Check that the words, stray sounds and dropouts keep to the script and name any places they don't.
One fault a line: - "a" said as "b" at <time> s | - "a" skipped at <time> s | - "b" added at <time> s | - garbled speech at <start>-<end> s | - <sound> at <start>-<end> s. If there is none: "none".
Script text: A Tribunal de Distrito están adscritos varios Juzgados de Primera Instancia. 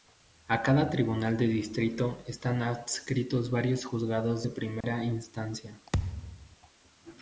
- "cada" added at 0.6 s
- dropout at 4.8-4.8 s
- thud at 5.9-6.6 s